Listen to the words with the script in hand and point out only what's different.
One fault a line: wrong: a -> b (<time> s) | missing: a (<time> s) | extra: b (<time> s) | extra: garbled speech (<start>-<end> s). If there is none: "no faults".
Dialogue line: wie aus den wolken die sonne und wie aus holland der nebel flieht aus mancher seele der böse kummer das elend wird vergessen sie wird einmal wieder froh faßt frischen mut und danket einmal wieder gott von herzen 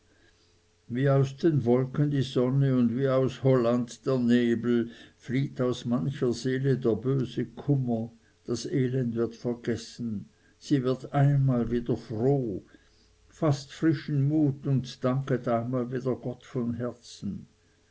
no faults